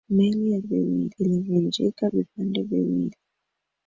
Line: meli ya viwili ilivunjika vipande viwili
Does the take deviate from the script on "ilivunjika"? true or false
false